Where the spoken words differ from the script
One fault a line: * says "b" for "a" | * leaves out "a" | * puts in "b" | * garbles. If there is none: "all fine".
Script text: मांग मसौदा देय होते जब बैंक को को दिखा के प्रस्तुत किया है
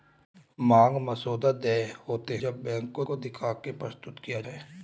all fine